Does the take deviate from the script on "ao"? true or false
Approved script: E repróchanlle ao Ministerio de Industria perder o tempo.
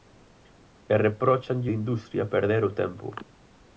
true